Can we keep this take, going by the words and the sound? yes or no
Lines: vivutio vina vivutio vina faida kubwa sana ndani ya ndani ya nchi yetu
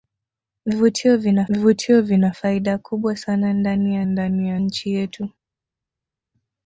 yes